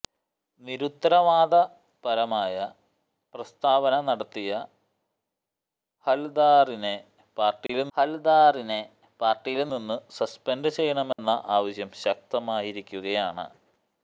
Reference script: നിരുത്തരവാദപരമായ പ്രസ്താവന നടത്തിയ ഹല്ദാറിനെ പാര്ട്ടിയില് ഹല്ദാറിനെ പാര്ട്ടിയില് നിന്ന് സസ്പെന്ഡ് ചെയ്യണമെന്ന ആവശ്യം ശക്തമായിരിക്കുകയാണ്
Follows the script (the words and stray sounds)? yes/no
no